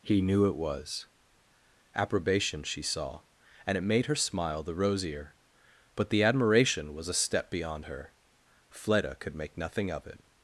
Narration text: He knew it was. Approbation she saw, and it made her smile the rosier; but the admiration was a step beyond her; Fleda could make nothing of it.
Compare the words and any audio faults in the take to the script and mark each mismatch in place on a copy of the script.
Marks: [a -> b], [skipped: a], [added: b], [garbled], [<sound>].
He knew it was. Approbation she saw, and it made her smile the rosier; but the admiration was a step beyond her; Fleda could make nothing of it.